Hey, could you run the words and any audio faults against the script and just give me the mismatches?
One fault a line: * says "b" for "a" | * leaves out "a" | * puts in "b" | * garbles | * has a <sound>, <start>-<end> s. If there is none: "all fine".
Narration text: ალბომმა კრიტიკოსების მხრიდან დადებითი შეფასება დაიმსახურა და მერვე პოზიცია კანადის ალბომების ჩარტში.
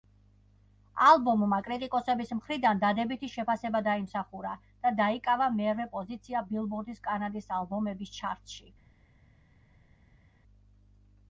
* puts in "დაიკავა"
* puts in "ბილბორდის"